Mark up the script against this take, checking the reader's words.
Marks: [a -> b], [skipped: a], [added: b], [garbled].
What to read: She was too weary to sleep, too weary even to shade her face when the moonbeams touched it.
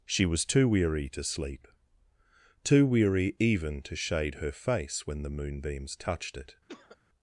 She was too weary to sleep, too weary even to shade her face when the moonbeams touched it.